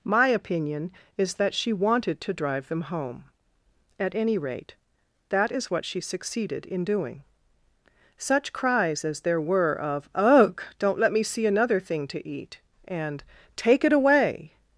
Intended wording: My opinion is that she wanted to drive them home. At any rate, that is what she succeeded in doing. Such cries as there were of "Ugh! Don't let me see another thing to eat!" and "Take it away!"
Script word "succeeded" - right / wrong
right